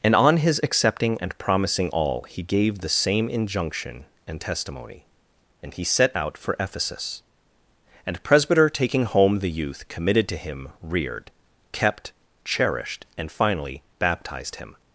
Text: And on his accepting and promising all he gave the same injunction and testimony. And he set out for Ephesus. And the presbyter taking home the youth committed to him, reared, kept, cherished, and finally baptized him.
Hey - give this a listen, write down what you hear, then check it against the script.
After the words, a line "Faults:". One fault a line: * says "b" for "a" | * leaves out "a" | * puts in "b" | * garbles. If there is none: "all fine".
And on his accepting and promising all he gave the same injunction and testimony. And he set out for Ephesus. And presbyter taking home the youth committed to him, reared, kept, cherished, and finally baptized him.
Faults:
* leaves out "the"